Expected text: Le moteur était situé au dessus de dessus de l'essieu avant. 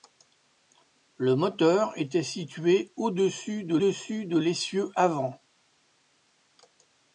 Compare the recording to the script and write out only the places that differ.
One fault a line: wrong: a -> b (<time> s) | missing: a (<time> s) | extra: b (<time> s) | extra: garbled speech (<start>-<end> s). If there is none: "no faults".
no faults